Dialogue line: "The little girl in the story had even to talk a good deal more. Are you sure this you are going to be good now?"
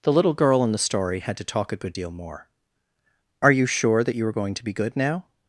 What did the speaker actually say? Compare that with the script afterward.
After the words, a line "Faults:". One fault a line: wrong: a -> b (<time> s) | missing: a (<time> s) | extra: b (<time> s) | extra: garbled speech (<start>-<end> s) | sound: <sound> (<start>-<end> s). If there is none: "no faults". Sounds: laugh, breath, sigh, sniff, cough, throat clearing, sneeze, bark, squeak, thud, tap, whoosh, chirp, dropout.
"The little girl in the story had to talk a good deal more. Are you sure that you are going to be good now?"
Faults:
missing: even (1.4 s)
wrong: this -> that (4.0 s)